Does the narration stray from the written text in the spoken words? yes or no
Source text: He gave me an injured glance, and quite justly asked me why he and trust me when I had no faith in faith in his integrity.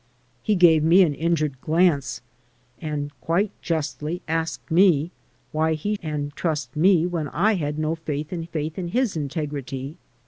no